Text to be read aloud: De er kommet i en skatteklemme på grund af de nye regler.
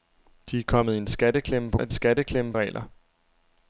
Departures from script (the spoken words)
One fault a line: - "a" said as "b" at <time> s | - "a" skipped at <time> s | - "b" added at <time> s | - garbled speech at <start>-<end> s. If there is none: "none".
- "grund" skipped at 1.8 s
- "nye" said as "skatteklemme" at 1.9 s